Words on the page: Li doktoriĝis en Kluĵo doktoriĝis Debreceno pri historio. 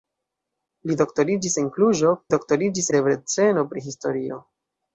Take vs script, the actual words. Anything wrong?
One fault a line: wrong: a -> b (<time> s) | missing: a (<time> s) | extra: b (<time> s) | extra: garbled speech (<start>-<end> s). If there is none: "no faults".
no faults